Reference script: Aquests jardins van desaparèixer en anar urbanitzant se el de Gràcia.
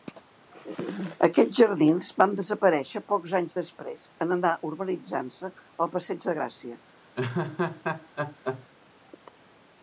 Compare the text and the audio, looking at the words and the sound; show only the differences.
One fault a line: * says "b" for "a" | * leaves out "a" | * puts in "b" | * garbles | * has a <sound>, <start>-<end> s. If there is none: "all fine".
* puts in "pocs anys després"
* puts in "passeig"
* has a laugh, 7.2-8.7 s